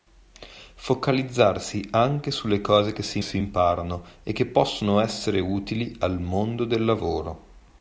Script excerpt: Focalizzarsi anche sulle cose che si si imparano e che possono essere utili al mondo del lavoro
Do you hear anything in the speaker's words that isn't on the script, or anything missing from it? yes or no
no